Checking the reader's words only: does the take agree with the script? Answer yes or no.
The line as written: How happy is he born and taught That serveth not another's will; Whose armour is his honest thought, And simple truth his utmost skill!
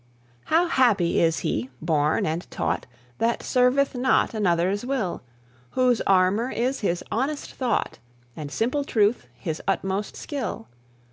yes